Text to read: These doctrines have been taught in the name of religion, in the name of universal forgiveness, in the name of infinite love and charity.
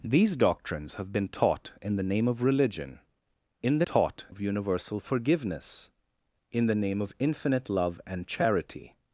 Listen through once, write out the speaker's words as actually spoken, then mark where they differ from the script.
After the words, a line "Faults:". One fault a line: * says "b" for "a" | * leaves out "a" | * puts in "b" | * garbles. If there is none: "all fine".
These doctrines have been taught in the name of religion, in the taught of universal forgiveness, in the name of infinite love and charity.
Faults:
* says "taught" for "name"